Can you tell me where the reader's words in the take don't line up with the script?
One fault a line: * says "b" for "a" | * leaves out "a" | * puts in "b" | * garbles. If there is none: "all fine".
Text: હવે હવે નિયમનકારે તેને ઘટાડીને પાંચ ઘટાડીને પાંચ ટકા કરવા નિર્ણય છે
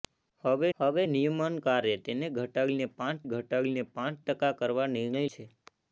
all fine